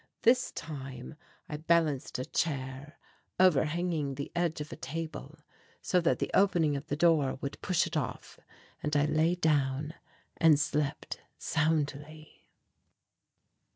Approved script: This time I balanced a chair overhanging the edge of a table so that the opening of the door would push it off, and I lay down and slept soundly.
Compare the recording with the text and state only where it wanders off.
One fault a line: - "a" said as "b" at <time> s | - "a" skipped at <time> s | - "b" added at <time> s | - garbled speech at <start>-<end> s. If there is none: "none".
none